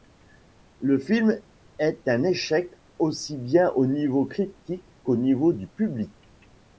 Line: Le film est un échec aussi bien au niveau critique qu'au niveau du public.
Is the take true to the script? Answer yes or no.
yes